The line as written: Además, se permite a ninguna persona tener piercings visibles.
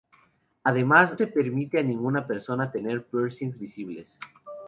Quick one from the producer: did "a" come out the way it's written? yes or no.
yes